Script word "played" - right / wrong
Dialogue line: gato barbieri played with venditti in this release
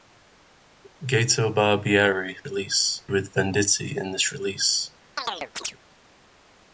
wrong